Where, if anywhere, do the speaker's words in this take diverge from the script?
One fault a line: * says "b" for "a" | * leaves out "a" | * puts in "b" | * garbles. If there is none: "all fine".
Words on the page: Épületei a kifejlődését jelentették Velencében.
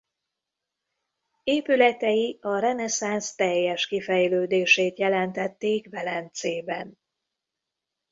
* puts in "reneszánsz teljes"